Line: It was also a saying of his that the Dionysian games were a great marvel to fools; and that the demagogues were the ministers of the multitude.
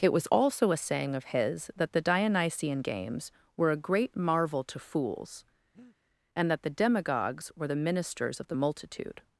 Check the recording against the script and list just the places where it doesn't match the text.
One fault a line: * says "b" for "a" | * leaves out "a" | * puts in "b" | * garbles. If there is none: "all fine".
all fine